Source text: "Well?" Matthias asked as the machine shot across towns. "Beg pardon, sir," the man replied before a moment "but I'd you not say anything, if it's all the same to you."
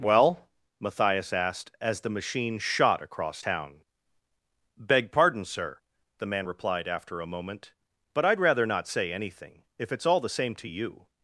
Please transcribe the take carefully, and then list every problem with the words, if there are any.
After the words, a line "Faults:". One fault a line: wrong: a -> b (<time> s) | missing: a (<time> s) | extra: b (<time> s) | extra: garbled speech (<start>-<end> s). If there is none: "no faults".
"Well?" Matthias asked as the machine shot across town. "Beg pardon, sir," the man replied after a moment "but I'd rather not say anything, if it's all the same to you."
Faults:
wrong: towns -> town (3.4 s)
wrong: before -> after (6.9 s)
wrong: you -> rather (8.4 s)